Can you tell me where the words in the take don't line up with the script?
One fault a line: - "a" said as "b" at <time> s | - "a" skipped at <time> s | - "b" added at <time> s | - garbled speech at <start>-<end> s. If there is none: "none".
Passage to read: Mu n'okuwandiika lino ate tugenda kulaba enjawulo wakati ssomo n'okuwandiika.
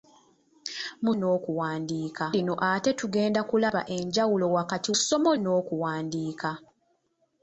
none